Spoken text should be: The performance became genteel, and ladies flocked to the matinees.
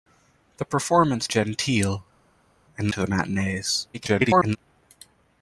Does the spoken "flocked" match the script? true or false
false